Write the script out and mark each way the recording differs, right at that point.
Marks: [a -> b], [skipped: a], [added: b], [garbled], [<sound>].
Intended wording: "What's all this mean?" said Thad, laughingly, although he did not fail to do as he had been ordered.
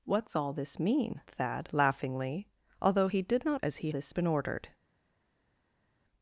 "What's all this mean?" [skipped: said] Thad, laughingly, although he did not [skipped: fail to do] as he [had -> this] been ordered.